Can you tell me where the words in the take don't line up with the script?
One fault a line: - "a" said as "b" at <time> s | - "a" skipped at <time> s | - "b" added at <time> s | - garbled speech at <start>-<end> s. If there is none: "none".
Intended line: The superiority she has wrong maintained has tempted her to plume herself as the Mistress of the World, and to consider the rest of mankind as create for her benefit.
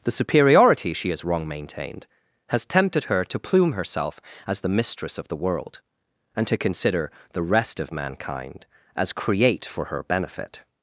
none